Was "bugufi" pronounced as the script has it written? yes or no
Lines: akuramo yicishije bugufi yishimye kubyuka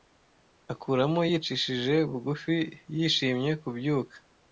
yes